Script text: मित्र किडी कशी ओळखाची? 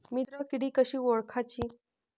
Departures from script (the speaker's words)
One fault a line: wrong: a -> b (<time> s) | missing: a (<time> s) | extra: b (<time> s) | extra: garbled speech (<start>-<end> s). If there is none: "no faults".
no faults